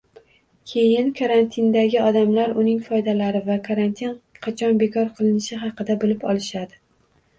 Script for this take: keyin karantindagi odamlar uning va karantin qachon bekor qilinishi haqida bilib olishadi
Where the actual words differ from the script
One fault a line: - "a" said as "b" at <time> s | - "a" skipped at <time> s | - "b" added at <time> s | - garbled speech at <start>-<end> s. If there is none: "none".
- "foydalari" added at 2.9 s